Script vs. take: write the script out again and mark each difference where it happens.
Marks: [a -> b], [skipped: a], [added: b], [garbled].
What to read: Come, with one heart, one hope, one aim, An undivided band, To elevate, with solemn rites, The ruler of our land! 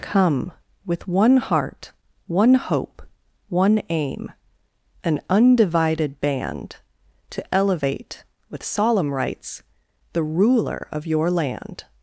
Come, with one heart, one hope, one aim, An undivided band, To elevate, with solemn rites, The ruler of [our -> your] land!